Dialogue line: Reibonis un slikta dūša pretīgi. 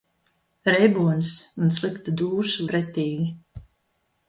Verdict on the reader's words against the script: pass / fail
pass